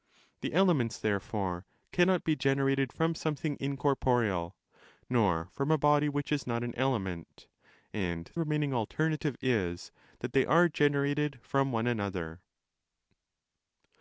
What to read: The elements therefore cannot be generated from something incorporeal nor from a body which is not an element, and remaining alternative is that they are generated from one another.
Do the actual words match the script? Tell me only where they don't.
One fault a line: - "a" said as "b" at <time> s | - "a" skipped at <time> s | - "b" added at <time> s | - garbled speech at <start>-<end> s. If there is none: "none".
none